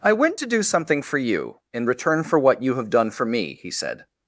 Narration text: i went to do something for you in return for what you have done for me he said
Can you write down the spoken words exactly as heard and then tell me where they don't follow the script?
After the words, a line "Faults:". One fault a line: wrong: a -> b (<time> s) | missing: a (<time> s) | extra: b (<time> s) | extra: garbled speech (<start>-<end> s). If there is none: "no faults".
i went to do something for you in return for what you have done for me he said
Faults:
no faults